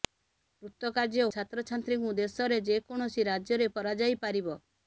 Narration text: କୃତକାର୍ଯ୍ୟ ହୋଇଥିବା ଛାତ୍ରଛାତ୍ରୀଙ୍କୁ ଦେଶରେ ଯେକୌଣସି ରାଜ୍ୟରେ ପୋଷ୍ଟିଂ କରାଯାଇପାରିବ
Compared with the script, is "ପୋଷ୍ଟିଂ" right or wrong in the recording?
wrong